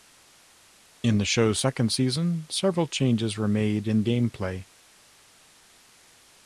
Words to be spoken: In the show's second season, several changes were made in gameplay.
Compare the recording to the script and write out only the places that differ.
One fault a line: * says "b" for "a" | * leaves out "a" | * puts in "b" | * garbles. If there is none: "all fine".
all fine